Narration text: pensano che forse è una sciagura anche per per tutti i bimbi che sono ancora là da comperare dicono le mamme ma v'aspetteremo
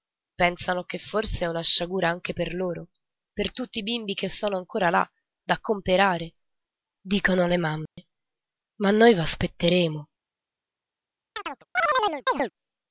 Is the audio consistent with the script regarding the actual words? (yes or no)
no